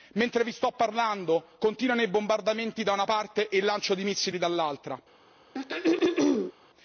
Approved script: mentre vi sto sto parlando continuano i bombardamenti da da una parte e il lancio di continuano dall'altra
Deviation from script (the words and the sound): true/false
true